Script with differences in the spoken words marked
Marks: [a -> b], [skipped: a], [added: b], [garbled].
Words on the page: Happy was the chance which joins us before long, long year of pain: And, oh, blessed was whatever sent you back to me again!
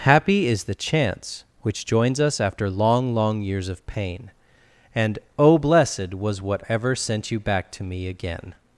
Happy [was -> is] the chance which joins us [before -> after] long, long [year -> years] of pain: And, oh, blessed was whatever sent you back to me again!